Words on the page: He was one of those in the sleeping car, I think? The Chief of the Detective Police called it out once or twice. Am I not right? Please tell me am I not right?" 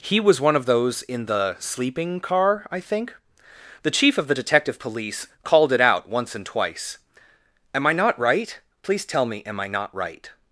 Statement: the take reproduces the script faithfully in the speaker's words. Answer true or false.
false